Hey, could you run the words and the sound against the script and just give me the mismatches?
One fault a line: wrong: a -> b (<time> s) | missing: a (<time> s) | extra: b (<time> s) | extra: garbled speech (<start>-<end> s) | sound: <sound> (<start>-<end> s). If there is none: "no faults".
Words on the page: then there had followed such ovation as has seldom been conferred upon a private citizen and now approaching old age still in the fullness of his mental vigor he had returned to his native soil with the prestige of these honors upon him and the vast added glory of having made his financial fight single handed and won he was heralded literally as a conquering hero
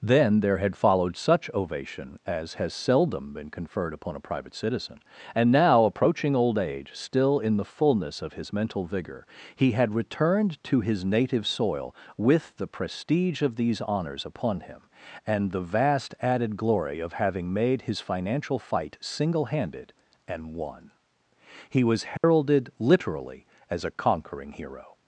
sound: dropout (22.2-22.2 s)